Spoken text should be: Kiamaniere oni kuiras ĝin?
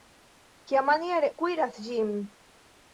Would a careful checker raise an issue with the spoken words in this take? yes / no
yes